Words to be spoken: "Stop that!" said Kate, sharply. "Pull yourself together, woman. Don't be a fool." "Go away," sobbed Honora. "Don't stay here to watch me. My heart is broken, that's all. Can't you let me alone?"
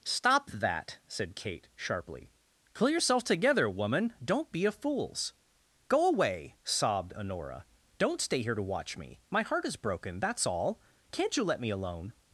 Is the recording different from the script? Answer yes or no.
yes